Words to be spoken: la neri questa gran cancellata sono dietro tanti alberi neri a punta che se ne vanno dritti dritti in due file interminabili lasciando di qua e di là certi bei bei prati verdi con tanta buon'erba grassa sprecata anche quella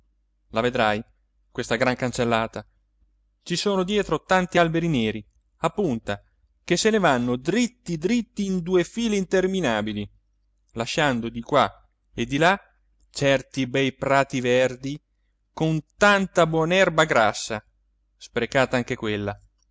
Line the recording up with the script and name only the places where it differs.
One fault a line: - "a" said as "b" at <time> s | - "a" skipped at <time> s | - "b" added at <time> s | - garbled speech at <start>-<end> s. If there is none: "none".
- "neri" said as "vedrai" at 0.6 s
- "ci" added at 3.4 s
- "bei" skipped at 13.9 s